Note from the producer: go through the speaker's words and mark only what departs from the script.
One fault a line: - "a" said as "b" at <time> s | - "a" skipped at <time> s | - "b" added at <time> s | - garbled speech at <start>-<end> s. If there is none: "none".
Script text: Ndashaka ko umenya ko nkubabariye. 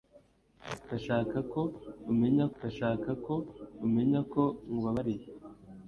- "ndashaka ko umenya" added at 2.6 s